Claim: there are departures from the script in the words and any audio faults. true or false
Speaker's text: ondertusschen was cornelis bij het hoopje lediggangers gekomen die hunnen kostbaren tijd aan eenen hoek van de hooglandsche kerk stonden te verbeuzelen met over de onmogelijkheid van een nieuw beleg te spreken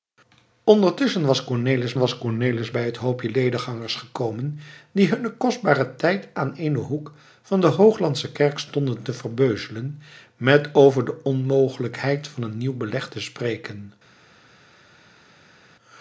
true